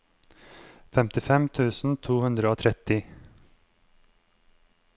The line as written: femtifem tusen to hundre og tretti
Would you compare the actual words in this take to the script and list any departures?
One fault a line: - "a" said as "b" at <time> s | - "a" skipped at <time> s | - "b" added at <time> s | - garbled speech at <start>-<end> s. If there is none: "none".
none